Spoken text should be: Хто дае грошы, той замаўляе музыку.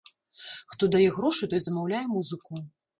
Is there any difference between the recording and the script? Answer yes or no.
no